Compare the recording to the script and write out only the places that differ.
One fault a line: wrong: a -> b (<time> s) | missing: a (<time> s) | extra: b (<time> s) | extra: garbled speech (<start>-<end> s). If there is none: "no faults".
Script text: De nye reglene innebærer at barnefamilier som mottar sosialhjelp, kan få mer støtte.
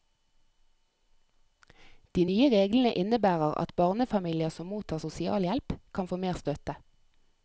no faults